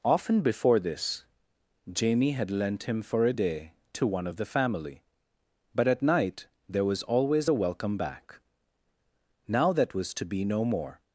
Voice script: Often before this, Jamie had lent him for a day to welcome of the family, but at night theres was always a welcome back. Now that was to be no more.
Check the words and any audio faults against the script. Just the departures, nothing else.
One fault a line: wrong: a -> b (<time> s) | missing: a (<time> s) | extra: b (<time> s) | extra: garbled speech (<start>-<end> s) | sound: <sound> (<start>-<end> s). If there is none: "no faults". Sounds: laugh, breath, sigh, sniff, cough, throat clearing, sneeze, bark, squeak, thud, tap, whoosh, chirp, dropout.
wrong: welcome -> one (4.1 s)
wrong: theres -> there (6.7 s)